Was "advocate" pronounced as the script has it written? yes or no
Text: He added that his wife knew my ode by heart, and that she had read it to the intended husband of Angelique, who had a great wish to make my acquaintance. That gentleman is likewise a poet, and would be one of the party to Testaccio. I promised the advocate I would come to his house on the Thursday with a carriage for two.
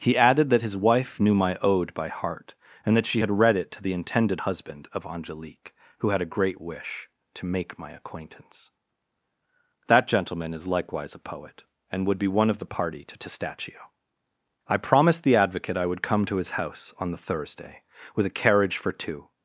yes